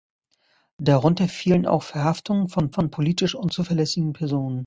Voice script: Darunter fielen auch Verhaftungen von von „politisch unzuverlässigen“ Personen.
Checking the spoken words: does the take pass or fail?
pass